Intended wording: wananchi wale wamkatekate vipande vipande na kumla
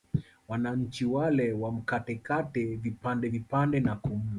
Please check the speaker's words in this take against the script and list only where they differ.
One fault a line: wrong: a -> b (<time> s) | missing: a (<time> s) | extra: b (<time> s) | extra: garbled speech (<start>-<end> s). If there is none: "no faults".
no faults